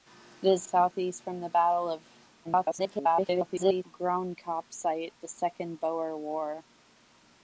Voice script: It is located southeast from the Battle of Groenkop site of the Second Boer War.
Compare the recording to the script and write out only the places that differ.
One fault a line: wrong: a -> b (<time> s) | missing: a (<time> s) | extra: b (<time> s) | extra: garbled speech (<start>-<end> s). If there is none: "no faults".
missing: located (0.7 s)
extra: garbled speech (2.4-3.8 s)
missing: of (5.1 s)